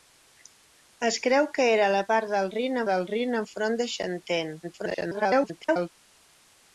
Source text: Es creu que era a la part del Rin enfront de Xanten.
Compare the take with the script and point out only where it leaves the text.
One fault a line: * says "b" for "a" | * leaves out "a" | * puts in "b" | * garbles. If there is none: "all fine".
* puts in "del Rin"
* garbles